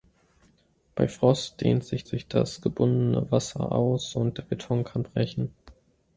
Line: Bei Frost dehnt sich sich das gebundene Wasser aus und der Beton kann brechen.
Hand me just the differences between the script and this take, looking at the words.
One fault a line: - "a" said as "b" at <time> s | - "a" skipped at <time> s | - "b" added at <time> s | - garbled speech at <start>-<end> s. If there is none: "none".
none